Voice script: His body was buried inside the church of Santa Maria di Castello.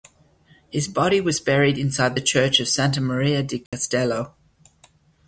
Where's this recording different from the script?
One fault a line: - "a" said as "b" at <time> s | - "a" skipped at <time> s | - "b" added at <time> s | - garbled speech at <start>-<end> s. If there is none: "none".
none